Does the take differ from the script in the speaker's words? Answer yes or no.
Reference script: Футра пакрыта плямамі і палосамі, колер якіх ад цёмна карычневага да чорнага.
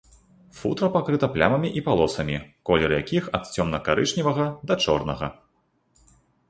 no